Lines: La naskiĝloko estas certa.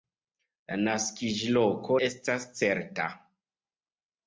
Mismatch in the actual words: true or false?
false